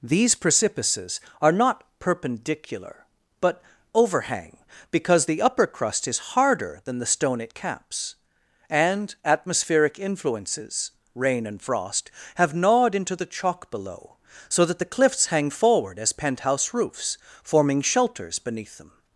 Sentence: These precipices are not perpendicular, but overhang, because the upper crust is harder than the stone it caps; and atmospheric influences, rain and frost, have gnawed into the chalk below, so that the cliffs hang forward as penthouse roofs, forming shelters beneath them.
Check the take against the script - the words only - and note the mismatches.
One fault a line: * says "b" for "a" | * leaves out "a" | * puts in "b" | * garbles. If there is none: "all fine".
all fine